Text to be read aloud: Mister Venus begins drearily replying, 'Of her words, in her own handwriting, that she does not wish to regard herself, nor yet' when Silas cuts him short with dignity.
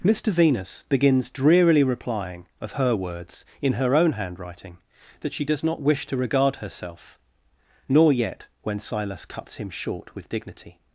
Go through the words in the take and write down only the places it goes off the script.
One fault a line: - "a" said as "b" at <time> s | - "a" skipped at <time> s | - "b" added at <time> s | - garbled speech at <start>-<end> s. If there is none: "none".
none